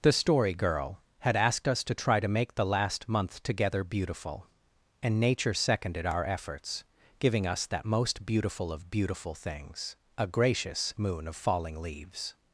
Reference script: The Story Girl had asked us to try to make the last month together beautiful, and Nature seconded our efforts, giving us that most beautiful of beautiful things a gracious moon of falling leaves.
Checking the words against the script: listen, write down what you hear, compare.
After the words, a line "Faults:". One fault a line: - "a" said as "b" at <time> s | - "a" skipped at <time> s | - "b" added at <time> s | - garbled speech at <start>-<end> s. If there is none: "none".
The Story Girl had asked us to try to make the last month together beautiful, and Nature seconded our efforts, giving us that most beautiful of beautiful things a gracious moon of falling leaves.
Faults:
none